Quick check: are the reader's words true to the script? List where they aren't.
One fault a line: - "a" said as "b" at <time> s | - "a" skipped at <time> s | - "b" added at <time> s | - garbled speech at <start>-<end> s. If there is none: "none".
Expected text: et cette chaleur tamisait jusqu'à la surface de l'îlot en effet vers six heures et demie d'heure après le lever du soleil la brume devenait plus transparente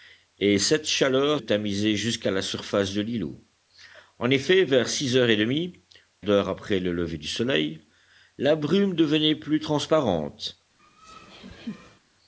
none